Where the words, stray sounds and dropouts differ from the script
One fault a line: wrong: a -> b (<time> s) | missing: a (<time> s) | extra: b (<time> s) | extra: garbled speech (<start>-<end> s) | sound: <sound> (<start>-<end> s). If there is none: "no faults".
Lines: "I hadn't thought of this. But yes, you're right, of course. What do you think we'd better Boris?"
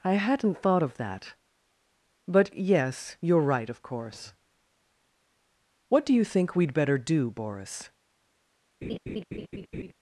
wrong: this -> that (1.0 s)
extra: do (7.0 s)
sound: laugh (8.8-9.9 s)